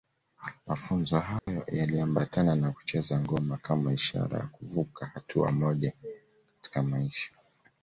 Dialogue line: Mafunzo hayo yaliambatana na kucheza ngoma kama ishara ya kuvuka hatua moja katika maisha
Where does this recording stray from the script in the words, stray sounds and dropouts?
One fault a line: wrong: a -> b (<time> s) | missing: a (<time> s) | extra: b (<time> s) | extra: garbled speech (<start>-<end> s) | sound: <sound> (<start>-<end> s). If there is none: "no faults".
sound: dropout (1.4-1.5 s)